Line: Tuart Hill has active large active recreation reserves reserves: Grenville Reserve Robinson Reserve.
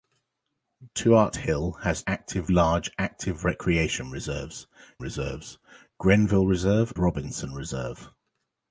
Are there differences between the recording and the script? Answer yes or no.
no